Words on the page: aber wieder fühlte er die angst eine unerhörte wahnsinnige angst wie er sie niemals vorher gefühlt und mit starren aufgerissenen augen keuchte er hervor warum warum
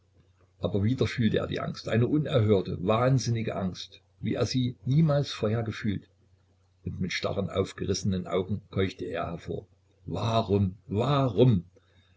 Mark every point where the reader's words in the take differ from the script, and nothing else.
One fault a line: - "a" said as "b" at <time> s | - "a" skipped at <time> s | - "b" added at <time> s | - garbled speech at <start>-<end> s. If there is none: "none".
none